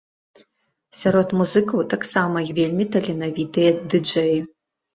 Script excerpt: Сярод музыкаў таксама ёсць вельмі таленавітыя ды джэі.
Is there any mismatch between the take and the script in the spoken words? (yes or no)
yes